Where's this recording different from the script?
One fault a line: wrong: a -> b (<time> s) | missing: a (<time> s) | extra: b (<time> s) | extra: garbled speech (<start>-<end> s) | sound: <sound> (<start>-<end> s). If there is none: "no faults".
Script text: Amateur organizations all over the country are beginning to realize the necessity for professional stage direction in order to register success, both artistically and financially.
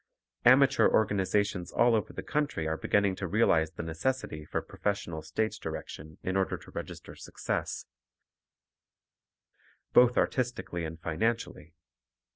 no faults